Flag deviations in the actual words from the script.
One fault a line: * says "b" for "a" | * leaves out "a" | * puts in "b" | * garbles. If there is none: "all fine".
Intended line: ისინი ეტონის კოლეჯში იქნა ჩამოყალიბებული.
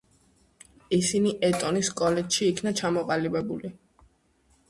all fine